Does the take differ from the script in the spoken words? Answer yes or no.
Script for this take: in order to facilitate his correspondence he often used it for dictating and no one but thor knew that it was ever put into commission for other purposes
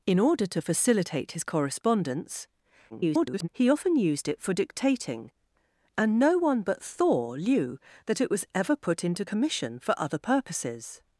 yes